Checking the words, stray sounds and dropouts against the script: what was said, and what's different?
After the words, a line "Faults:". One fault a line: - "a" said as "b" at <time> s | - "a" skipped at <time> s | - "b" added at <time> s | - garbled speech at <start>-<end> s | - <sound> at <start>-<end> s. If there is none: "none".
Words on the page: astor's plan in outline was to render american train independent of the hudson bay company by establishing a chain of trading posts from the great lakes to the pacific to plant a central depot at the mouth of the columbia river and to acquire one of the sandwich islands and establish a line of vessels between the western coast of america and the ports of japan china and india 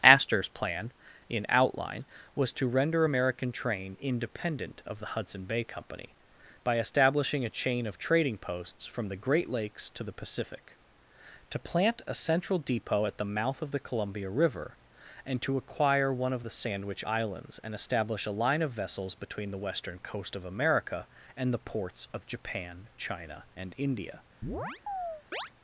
astor's plan in outline was to render american train independent of the hudson bay company by establishing a chain of trading posts from the great lakes to the pacific to plant a central depot at the mouth of the columbia river and to acquire one of the sandwich islands and establish a line of vessels between the western coast of america and the ports of japan china and india
Faults:
- chirp at 24.4-25.5 s